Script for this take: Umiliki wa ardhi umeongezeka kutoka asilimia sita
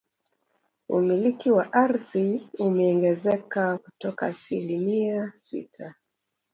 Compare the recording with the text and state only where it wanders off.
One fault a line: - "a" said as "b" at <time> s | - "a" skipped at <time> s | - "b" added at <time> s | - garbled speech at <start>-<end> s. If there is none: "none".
none